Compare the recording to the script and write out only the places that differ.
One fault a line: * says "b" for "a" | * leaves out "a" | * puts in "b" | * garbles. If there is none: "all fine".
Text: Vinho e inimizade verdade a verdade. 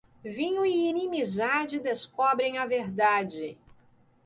* says "descobrem" for "verdade"